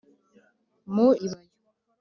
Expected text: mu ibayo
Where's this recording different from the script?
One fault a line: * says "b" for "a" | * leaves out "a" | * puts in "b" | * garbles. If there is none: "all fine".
all fine